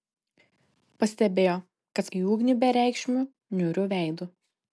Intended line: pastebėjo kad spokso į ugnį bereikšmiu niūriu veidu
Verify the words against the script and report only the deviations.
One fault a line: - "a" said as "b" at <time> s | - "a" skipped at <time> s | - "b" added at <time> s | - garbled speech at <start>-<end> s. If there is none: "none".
- "spokso" skipped at 2.1 s